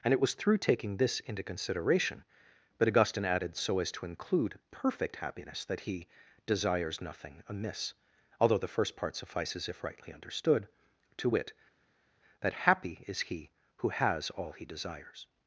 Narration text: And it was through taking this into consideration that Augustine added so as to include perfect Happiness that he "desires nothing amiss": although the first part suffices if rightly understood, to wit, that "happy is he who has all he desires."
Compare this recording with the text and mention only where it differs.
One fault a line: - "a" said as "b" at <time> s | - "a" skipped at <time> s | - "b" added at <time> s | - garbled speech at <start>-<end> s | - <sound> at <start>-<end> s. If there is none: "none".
- "that" said as "but" at 2.8 s